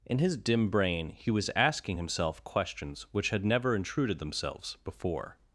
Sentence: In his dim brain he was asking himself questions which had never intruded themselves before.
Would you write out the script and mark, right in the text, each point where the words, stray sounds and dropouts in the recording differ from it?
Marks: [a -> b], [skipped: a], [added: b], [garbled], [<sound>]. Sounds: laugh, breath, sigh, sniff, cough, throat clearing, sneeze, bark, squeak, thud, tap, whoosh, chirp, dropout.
In his dim brain he was asking himself questions which had never intruded themselves before.